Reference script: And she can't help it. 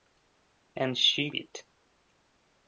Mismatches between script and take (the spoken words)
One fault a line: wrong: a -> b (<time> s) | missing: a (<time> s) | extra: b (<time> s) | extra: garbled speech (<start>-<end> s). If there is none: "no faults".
missing: can't help (1.3 s)